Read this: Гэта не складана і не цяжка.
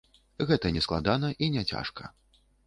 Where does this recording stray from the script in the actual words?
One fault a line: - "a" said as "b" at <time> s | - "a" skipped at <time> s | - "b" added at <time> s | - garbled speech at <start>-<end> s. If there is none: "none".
none